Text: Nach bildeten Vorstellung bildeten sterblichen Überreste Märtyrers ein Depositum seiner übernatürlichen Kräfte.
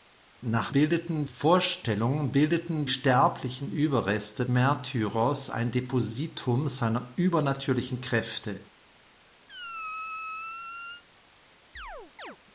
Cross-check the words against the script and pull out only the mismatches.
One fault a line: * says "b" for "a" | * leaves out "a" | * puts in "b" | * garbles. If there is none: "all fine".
all fine